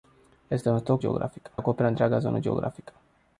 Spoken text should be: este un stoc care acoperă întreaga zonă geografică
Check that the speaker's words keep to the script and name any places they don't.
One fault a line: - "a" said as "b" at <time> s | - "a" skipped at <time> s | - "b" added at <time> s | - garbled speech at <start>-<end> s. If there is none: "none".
- "care" said as "geografică" at 1.0 s